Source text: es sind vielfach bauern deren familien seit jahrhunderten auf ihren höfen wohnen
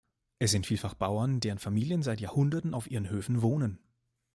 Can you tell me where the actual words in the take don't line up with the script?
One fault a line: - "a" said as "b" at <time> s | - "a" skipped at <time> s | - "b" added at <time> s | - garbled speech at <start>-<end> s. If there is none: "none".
none